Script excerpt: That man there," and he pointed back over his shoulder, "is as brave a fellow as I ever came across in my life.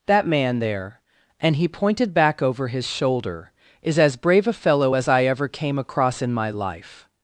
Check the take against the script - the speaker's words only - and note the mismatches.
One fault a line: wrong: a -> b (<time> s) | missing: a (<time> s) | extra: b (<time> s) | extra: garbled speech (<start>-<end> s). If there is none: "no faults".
no faults